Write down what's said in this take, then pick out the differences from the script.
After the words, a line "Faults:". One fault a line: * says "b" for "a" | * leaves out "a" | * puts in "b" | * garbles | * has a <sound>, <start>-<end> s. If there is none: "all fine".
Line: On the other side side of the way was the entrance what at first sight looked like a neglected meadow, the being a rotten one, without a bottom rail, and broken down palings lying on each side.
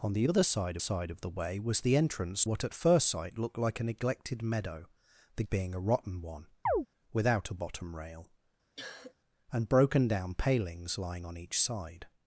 On the other side side of the way was the entrance what at first sight looked like a neglected meadow, the being a rotten one, without a bottom rail, and broken down palings lying on each side.
Faults:
* has a chirp, 6.7-6.9 s
* has a cough, 8.8-9.1 s